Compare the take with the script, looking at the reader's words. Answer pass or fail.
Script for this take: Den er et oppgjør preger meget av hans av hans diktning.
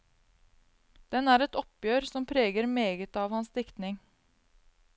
fail